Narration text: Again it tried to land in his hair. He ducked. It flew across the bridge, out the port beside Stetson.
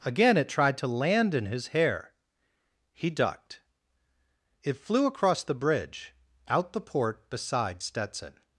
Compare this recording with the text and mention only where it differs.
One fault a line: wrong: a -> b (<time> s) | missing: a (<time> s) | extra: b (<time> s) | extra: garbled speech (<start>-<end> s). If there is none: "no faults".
no faults